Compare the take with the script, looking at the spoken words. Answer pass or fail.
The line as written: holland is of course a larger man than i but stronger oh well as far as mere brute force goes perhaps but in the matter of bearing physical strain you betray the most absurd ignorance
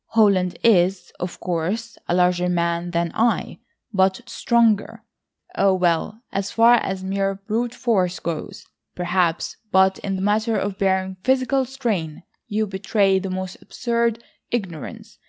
pass